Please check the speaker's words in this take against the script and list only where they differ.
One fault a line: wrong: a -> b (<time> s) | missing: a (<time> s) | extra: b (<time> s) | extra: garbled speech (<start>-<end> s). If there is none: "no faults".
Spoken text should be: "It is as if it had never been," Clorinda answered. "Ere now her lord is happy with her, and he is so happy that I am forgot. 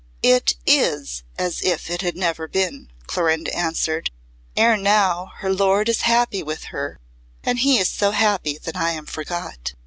no faults